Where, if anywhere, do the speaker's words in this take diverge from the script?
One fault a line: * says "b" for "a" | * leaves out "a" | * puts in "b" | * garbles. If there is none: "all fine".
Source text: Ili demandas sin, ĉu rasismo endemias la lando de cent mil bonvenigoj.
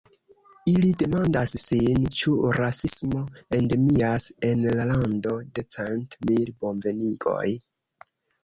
* puts in "en"